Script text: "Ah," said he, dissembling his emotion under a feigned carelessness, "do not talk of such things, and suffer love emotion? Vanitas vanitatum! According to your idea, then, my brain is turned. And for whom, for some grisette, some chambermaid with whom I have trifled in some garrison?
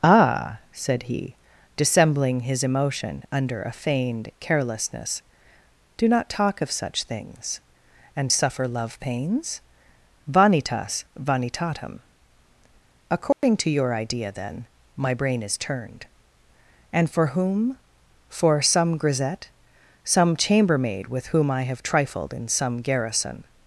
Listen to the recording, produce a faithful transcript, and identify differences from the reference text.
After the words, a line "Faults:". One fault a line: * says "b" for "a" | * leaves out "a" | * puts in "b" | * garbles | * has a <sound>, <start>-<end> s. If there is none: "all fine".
"Ah," said he, dissembling his emotion under a feigned carelessness, "do not talk of such things, and suffer love pains? Vanitas vanitatum! According to your idea, then, my brain is turned. And for whom, for some grisette, some chambermaid with whom I have trifled in some garrison?
Faults:
* says "pains" for "emotion"
* has a dropout, 13.3-13.4 s